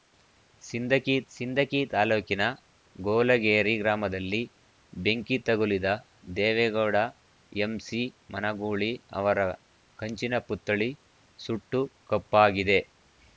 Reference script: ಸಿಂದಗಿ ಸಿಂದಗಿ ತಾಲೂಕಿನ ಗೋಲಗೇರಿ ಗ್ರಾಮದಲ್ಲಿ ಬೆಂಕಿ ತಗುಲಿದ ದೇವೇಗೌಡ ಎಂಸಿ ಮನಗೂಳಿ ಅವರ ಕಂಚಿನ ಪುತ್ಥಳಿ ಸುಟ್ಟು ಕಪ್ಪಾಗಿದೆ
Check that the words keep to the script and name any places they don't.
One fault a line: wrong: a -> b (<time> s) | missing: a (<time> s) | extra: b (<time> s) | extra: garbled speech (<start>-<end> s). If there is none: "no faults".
no faults